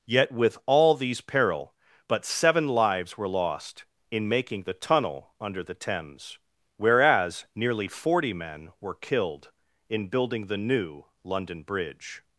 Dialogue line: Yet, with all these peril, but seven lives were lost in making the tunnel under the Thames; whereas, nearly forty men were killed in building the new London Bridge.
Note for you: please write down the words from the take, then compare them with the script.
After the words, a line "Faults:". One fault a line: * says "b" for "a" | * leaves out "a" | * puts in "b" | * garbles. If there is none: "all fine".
Yet, with all these peril, but seven lives were lost in making the tunnel under the Thames; whereas, nearly forty men were killed in building the new London Bridge.
Faults:
all fine